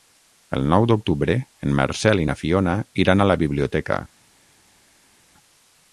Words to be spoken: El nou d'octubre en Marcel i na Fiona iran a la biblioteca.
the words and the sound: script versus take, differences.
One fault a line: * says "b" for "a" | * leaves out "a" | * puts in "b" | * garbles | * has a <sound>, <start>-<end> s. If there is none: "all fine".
all fine